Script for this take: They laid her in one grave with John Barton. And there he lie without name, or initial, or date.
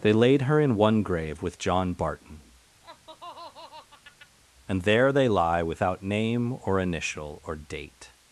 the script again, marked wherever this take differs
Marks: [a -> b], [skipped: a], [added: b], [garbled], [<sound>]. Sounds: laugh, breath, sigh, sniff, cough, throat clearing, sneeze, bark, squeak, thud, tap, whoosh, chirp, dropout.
They laid her in one grave with John Barton. [laugh] And there [he -> they] lie without name, or initial, or date.